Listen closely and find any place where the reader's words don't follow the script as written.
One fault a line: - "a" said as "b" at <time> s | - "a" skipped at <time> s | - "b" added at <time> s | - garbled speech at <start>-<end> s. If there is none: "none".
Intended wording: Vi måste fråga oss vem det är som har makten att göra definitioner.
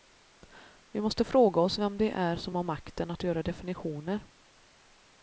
none